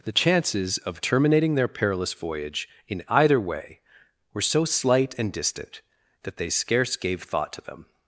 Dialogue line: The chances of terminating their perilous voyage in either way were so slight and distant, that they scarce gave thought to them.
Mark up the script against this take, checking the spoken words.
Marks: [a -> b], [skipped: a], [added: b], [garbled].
The chances of terminating their perilous voyage in either way were so slight and distant, that they scarce gave thought to them.